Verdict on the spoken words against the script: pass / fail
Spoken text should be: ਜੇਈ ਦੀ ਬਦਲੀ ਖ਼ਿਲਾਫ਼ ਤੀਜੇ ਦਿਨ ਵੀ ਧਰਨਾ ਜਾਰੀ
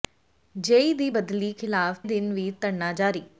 fail